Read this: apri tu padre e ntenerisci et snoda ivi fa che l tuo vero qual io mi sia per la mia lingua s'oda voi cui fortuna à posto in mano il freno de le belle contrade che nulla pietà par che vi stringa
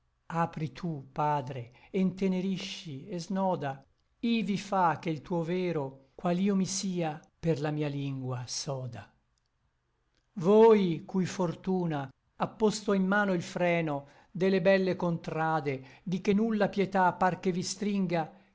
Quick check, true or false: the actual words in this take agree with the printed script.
false